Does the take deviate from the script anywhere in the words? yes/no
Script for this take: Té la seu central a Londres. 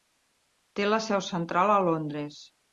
no